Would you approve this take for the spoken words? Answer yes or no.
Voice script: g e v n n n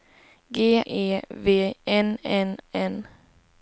yes